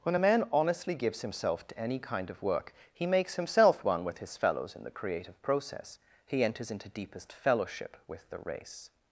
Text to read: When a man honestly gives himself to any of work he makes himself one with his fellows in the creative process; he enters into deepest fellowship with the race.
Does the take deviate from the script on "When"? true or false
false